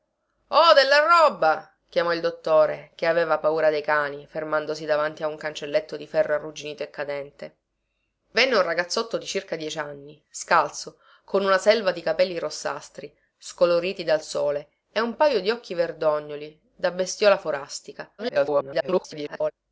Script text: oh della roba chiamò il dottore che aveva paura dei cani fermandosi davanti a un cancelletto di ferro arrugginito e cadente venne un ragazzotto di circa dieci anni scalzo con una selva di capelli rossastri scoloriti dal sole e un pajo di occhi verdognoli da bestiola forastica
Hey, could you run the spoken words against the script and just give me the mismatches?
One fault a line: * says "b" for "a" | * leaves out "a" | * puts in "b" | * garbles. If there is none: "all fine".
* garbles